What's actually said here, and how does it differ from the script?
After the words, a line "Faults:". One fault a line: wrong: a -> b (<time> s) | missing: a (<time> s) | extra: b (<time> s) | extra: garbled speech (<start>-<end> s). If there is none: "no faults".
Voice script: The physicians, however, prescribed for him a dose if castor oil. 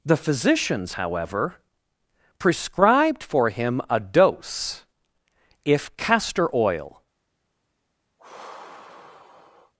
The physicians, however, prescribed for him a dose if castor oil.
Faults:
no faults